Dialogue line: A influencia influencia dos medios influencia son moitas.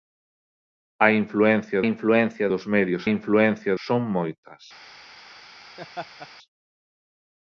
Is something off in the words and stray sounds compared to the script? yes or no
yes